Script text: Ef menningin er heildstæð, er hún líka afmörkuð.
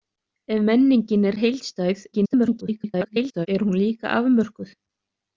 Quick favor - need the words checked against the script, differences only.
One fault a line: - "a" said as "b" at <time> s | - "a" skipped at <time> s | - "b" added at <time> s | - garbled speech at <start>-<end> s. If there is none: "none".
- garbled speech at 2.1-3.5 s